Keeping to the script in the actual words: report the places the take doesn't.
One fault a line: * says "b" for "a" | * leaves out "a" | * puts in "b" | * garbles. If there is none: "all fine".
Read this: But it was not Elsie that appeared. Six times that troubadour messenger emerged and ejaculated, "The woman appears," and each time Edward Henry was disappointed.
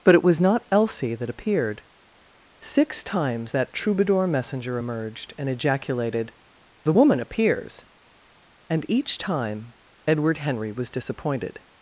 all fine